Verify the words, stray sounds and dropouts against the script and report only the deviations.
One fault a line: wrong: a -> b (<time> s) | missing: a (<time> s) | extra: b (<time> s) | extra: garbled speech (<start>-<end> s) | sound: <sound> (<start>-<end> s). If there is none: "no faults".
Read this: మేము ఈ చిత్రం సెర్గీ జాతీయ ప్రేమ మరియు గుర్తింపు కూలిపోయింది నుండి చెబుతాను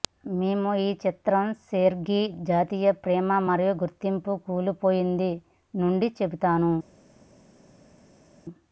no faults